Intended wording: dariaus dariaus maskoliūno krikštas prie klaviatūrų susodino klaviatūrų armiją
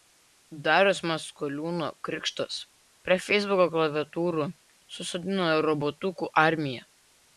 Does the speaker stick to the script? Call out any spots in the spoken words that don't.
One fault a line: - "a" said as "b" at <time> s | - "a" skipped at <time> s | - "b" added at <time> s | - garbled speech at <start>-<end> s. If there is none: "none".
- "dariaus" skipped at 1.0 s
- "feisbuko" added at 3.2 s
- "klaviatūrų" said as "robotukų" at 5.7 s